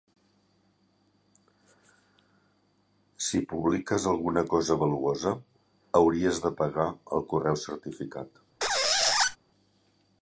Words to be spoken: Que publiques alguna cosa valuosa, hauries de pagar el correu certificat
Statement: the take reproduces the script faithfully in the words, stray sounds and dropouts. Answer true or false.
false